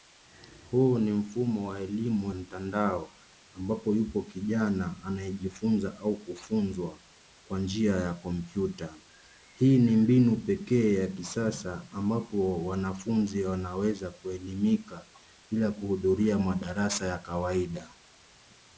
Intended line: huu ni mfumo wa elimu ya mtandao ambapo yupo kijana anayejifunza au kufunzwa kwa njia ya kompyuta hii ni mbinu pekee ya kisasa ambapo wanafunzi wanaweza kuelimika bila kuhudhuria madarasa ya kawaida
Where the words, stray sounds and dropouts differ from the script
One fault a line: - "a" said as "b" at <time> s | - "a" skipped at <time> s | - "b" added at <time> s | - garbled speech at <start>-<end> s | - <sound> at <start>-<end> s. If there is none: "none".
- "ya" skipped at 2.3 s